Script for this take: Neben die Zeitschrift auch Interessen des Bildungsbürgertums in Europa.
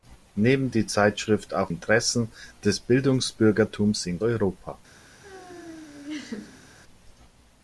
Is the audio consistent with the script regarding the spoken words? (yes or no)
yes